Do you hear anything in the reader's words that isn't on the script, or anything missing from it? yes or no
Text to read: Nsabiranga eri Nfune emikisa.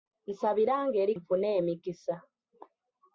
no